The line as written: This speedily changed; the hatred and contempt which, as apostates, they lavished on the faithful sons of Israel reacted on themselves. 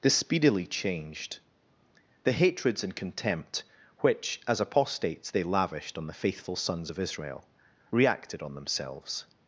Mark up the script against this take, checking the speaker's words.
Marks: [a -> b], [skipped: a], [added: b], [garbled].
This speedily changed; the [hatred -> hatreds] and contempt which, as apostates, they lavished on the faithful sons of Israel reacted on themselves.